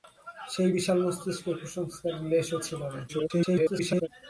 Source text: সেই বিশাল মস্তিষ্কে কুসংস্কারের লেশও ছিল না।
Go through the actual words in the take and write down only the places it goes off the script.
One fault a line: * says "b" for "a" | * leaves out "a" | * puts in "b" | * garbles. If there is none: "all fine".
* garbles